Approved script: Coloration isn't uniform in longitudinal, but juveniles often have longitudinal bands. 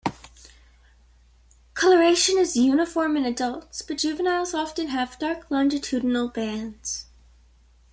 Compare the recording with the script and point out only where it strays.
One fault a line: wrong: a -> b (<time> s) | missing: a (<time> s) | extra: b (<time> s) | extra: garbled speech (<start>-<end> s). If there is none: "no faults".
wrong: isn't -> is (2.4 s)
wrong: longitudinal -> adults (3.2 s)
extra: dark (5.2 s)